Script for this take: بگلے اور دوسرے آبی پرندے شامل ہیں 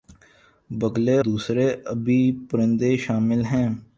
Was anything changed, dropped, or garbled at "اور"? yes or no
yes